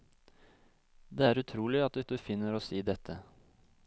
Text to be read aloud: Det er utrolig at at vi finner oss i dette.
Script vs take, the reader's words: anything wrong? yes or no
no